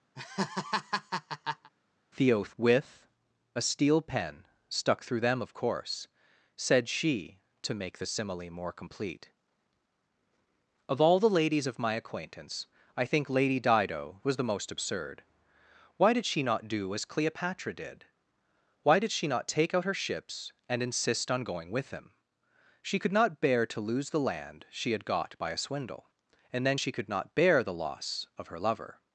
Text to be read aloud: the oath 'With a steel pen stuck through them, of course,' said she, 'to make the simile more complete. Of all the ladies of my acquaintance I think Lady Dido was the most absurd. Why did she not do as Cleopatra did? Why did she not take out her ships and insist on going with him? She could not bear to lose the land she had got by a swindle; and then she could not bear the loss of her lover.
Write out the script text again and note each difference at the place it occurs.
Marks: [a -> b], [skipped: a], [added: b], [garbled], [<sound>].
[laugh] the oath 'With a steel pen stuck through them, of course,' said she, 'to make the simile more complete. Of all the ladies of my acquaintance I think Lady Dido was the most absurd. Why did she not do as Cleopatra did? Why did she not take out her ships and insist on going with him? She could not bear to lose the land she had got by a swindle; and then she could not bear the loss of her lover.